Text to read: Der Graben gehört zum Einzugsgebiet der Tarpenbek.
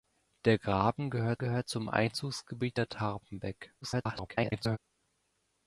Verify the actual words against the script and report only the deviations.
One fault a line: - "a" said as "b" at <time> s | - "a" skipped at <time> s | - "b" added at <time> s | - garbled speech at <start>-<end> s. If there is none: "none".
- "gehört" added at 1.4 s
- garbled speech at 3.8-4.8 s